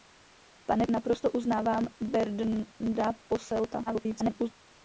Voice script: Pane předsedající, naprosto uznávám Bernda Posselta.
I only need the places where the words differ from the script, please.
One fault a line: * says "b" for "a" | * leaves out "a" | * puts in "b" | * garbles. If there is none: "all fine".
* leaves out "předsedající"
* garbles